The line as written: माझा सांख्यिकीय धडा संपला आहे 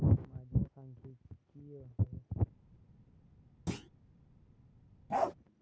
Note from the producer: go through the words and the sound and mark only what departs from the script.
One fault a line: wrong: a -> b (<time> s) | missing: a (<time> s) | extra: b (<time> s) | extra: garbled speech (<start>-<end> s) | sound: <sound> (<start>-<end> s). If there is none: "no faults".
missing: धडा संपला (1.8 s)
sound: thud (3.7-3.9 s)
sound: bark (5.1-5.3 s)